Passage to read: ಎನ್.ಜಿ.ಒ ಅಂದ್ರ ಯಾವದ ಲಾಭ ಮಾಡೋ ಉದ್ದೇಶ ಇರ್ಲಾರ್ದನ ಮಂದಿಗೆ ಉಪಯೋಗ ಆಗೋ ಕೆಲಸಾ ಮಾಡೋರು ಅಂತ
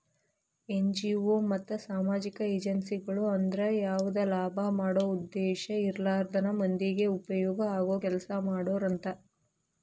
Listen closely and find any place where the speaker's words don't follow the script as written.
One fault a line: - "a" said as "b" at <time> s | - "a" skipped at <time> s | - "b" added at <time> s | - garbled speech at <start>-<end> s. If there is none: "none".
- "ಮತ್ತ ಸಾಮಾಜಿಕ ಏಜೆನ್ಸಿಗಳು" added at 1.5 s